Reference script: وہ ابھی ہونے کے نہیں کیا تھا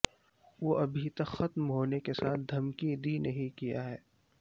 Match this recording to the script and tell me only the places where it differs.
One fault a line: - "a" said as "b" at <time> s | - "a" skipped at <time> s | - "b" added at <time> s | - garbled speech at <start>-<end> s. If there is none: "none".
- "تک ختم" added at 1.1 s
- "ساتھ دھمکی دی" added at 2.1 s
- "تھا" said as "ہے" at 3.8 s